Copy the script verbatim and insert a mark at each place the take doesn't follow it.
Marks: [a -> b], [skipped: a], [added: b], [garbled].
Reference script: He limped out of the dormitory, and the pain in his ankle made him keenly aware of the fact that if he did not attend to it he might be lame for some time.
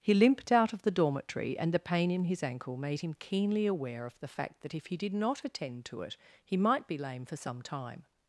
He limped out of the dormitory, and the pain in his ankle made him keenly aware of the fact that if he did not attend to it he might be lame for some time.